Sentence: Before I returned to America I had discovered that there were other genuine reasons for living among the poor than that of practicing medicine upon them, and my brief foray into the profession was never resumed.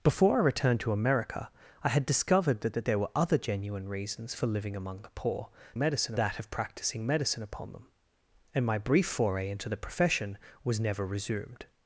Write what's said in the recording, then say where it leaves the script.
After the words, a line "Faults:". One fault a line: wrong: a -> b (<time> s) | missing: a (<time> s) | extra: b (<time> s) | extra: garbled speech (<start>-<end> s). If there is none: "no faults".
Before I returned to America I had discovered that that there were other genuine reasons for living among the poor medicine that of practicing medicine upon them, and my brief foray into the profession was never resumed.
Faults:
extra: that (2.7 s)
wrong: than -> medicine (5.8 s)